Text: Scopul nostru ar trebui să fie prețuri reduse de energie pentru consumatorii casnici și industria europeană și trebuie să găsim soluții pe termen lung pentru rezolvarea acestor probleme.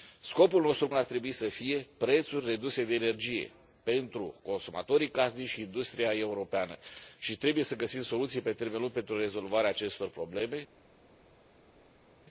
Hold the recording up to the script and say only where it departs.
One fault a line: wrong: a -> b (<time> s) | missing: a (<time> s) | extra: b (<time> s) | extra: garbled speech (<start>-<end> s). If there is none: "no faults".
no faults